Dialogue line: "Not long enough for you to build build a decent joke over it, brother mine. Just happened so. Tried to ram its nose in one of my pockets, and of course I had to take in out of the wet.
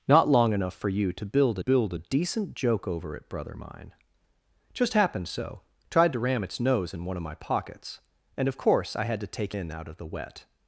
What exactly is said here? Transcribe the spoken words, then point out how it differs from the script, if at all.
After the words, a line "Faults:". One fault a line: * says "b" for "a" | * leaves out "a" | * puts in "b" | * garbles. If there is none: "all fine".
"Not long enough for you to build build a decent joke over it, brother mine. Just happened so. Tried to ram its nose in one of my pockets, and of course I had to take in out of the wet.
Faults:
all fine